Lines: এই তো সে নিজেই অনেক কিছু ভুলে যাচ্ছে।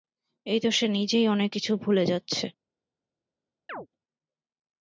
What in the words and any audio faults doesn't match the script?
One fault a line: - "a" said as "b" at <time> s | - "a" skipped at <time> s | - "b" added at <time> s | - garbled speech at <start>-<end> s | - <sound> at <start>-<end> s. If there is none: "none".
- chirp at 3.7-3.9 s